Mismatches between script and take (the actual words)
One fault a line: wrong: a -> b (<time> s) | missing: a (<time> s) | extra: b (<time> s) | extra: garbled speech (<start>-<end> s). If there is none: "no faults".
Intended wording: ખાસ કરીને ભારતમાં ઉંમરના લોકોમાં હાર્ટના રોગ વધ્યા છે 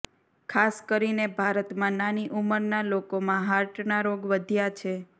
extra: નાની (2.0 s)